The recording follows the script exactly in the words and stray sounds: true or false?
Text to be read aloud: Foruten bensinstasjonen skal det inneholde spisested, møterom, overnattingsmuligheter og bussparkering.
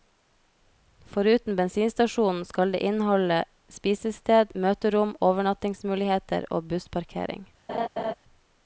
false